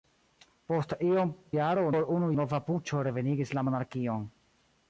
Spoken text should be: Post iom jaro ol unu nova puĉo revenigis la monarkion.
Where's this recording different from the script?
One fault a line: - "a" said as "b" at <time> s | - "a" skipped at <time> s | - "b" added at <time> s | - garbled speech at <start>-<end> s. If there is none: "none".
none